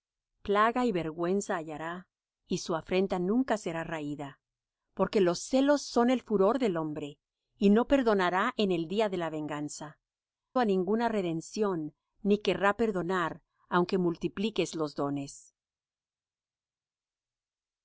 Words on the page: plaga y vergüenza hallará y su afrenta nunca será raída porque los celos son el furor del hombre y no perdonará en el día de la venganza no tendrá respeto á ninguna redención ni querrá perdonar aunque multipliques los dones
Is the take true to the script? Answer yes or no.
no